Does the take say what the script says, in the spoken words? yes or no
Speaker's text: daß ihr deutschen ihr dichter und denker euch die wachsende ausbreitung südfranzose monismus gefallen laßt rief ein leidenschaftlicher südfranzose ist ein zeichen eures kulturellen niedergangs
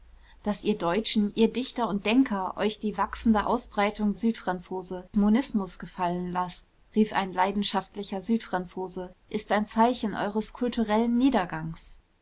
yes